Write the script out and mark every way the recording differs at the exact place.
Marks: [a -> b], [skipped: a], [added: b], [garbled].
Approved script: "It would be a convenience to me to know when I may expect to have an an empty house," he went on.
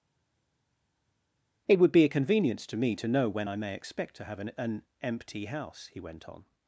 "It would be a convenience to me to know when I may expect to have an an empty house," he went on.